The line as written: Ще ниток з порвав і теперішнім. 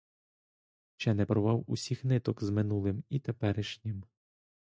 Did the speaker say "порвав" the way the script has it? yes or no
no